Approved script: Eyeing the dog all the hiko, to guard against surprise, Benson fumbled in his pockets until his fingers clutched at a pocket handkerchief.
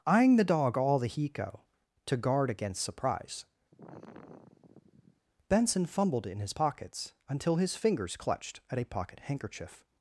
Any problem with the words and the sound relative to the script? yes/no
yes